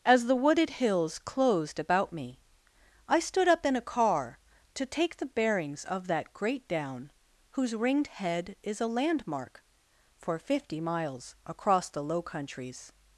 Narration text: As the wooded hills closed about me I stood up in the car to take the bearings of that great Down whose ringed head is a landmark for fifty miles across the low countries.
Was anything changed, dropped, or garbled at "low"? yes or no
no